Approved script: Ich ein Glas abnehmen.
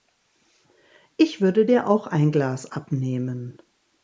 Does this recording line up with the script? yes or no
no